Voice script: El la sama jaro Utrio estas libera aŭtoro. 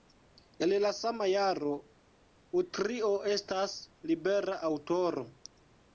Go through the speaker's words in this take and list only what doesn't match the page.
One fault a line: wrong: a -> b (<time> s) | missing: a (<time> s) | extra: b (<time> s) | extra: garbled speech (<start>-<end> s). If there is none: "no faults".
no faults